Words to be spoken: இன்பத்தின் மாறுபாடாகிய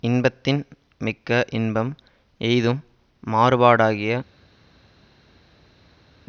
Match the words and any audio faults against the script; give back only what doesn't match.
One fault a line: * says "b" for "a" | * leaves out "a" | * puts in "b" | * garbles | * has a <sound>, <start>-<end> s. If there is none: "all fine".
* puts in "மிக்க இன்பம் எய்தும்"